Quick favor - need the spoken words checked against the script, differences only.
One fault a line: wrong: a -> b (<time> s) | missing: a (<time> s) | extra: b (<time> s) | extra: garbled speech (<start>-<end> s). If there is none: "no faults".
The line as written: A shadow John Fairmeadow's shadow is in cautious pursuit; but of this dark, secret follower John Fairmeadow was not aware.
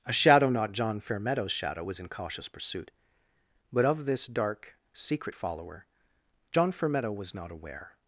extra: not (0.5 s)
wrong: is -> was (1.8 s)